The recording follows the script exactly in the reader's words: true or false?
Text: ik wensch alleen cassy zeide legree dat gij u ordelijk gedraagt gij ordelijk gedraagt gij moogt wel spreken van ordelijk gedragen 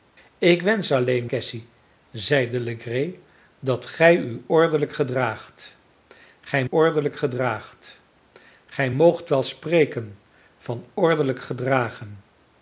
true